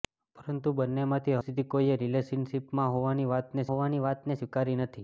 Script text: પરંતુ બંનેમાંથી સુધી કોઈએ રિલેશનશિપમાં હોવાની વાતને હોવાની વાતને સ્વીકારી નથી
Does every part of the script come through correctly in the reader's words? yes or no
yes